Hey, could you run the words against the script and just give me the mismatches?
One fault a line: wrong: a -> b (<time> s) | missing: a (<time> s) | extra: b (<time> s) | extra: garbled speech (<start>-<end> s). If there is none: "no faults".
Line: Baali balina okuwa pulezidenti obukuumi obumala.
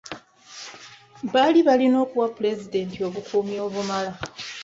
no faults